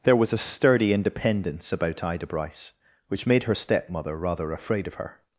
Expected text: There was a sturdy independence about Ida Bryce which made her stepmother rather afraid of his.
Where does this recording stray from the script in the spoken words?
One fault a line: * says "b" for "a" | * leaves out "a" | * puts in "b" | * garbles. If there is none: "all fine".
* says "her" for "his"